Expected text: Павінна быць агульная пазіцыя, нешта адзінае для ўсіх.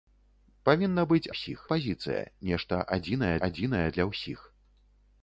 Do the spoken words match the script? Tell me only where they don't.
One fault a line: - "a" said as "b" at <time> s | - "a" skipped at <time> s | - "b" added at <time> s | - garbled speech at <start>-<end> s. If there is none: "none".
- "агульная" said as "ўсіх" at 1.3 s
- "адзінае" added at 3.5 s